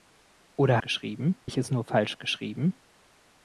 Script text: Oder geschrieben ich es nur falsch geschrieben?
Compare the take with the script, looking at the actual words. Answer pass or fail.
pass